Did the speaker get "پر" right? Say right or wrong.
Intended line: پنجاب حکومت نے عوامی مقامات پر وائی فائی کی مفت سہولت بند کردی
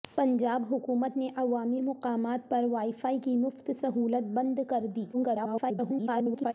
right